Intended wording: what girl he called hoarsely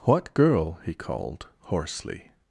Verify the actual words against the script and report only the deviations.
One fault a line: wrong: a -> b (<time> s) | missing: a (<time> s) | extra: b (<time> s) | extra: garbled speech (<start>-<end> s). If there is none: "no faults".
no faults